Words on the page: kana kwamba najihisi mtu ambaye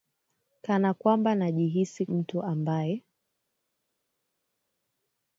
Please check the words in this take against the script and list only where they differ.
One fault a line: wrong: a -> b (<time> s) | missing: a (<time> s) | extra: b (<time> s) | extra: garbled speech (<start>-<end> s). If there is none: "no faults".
no faults